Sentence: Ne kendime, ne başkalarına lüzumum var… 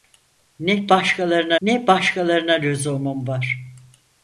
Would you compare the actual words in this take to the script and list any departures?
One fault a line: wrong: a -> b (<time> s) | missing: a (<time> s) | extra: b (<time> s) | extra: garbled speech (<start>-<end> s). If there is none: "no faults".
wrong: kendime -> başkalarına (0.9 s)